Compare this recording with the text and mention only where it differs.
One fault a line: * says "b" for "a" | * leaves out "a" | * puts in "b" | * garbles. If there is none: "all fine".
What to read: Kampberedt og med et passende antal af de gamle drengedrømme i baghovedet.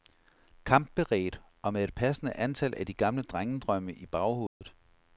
all fine